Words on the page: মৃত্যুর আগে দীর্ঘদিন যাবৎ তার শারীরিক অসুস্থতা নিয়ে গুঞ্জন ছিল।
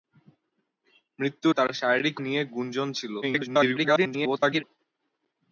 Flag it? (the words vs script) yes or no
yes